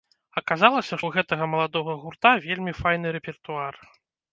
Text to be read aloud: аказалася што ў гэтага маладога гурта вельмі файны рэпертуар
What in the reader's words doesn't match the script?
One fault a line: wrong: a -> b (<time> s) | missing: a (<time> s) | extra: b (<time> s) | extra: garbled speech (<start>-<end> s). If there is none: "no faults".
missing: што (1.0 s)